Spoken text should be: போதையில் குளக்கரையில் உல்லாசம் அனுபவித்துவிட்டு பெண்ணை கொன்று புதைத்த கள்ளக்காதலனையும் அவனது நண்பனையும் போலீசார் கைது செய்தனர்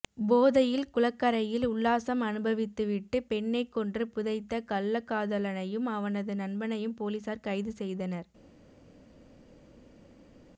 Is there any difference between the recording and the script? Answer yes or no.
no